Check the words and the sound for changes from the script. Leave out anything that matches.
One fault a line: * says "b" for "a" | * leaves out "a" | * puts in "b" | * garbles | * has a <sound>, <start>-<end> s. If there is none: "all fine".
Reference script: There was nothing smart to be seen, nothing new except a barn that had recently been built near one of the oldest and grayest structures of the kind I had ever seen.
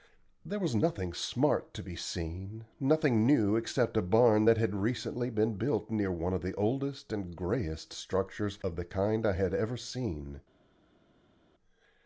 all fine